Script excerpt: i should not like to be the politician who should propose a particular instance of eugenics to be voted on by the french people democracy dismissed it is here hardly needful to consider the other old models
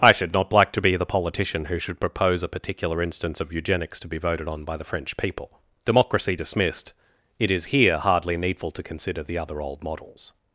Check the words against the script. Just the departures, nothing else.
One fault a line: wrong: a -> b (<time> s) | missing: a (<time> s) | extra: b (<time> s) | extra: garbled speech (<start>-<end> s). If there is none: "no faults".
no faults